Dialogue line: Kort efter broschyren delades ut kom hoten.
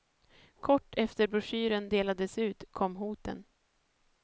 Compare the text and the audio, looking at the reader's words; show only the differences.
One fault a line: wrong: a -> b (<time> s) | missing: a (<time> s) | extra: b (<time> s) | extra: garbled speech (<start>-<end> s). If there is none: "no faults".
no faults